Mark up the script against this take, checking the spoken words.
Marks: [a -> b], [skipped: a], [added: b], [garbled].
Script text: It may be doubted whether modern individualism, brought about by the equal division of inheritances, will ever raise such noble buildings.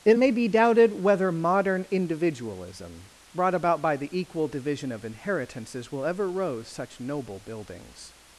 It may be doubted whether modern individualism, brought about by the equal division of inheritances, will ever [raise -> rose] such noble buildings.